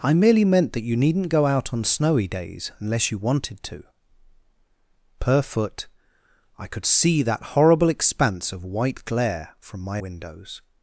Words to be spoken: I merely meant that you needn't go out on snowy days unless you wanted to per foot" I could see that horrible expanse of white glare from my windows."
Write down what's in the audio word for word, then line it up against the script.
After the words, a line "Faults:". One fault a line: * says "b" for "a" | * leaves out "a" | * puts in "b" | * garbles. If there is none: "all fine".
I merely meant that you needn't go out on snowy days unless you wanted to per foot" I could see that horrible expanse of white glare from my windows."
Faults:
all fine